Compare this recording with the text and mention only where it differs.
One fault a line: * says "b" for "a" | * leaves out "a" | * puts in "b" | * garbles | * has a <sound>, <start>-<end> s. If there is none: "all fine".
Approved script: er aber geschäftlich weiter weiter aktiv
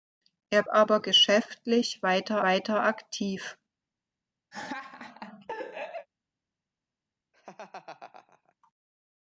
* has a laugh, 4.5-6.1 s
* has a laugh, 7.3-8.5 s